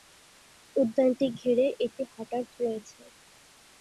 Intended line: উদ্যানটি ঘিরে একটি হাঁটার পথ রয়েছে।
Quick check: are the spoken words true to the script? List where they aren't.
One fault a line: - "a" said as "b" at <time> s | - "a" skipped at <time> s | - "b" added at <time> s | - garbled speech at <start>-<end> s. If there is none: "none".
- "পথ" skipped at 2.4 s